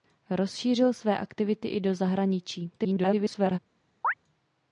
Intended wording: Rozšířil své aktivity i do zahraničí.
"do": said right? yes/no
yes